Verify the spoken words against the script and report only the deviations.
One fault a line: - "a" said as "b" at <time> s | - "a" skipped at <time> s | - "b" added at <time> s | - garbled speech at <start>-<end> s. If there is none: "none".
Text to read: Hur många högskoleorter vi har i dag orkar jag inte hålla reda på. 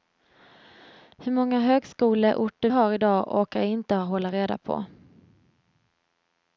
- "vi" skipped at 2.7 s